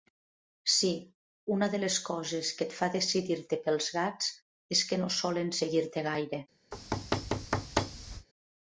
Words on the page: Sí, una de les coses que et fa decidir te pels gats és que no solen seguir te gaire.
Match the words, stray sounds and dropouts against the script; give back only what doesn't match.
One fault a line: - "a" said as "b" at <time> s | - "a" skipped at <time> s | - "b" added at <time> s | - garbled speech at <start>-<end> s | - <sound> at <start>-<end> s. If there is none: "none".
- thud at 6.7-8.3 s